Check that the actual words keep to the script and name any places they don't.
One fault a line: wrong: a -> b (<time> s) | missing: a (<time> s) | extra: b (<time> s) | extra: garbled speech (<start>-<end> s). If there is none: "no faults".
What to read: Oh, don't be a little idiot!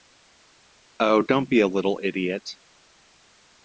no faults